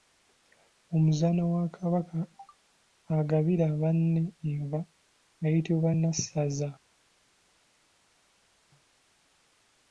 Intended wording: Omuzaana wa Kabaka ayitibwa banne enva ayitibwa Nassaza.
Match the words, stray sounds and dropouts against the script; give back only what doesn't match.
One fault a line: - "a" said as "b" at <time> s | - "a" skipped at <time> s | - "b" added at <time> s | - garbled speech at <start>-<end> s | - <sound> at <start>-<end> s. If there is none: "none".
- "ayitibwa" said as "agabira" at 3.2 s